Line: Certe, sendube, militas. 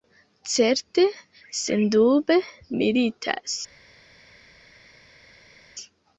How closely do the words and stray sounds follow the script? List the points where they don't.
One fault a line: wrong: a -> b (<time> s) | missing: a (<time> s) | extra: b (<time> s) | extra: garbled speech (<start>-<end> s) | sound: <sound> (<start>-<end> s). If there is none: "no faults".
no faults